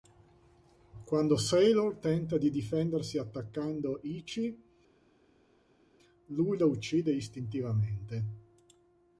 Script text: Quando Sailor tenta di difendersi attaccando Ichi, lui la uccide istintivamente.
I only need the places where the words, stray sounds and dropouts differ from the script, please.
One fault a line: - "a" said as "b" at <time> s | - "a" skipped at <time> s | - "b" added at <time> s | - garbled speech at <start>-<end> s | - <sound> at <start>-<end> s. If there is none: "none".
none